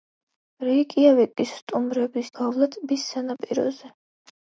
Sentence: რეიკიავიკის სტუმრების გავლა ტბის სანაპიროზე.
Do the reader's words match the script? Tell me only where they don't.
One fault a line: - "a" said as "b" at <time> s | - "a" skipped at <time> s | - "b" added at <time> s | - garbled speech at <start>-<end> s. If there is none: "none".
none